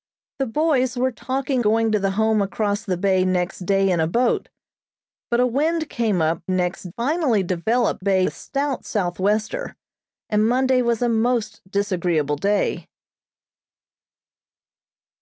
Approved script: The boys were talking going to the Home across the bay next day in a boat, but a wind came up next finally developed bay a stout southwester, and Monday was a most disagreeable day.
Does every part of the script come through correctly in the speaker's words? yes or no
yes